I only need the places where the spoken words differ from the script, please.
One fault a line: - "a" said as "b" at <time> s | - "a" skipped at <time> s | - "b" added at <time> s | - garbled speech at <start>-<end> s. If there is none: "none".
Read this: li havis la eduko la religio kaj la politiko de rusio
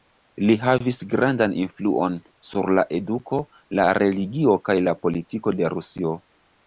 - "grandan influon sur" added at 1.1 s